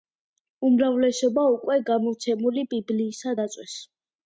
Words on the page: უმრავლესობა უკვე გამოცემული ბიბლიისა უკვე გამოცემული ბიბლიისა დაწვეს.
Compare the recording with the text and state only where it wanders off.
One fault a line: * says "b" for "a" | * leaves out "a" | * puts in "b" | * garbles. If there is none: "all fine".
* leaves out "უკვე გამოცემული ბიბლიისა"